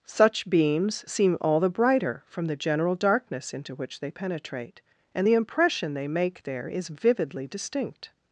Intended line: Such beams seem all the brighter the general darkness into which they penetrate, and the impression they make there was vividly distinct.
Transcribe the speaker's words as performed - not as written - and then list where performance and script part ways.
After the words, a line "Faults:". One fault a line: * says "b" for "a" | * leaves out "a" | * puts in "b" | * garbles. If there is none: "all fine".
Such beams seem all the brighter from the general darkness into which they penetrate, and the impression they make there is vividly distinct.
Faults:
* puts in "from"
* says "is" for "was"